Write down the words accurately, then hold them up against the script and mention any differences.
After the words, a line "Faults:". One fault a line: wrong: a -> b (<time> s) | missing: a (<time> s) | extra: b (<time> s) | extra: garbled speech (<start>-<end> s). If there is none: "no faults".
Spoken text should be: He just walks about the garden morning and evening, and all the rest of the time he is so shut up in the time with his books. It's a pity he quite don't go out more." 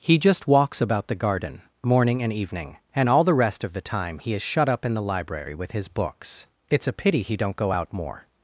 He just walks about the garden morning and evening, and all the rest of the time he is shut up in the library with his books. It's a pity he don't go out more."
Faults:
missing: so (4.4 s)
wrong: time -> library (5.0 s)
missing: quite (7.4 s)